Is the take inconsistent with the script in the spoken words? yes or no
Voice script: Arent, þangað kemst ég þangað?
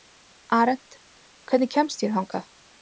yes